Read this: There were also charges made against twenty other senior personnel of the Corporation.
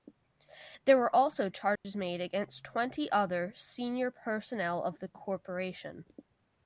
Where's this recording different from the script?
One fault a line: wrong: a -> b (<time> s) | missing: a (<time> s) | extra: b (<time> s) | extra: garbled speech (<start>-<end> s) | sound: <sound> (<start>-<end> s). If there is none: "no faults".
sound: dropout (1.8-1.8 s)